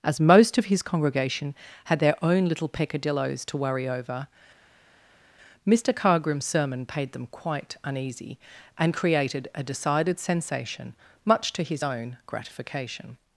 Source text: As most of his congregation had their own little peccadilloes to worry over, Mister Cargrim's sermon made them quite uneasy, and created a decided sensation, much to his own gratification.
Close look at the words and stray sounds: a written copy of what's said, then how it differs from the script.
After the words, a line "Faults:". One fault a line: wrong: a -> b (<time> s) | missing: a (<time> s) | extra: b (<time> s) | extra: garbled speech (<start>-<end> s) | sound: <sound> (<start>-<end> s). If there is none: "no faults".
As most of his congregation had their own little peccadilloes to worry over, Mister Cargrim's sermon paid them quite uneasy, and created a decided sensation, much to his own gratification.
Faults:
wrong: made -> paid (6.9 s)